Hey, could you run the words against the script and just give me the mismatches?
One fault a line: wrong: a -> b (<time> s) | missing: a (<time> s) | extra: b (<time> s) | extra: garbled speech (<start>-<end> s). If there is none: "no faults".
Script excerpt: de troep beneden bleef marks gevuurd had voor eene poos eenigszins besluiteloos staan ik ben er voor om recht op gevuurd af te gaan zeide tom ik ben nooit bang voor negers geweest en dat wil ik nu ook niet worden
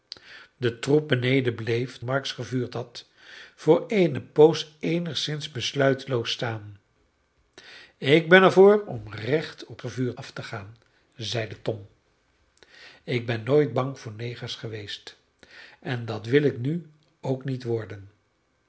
no faults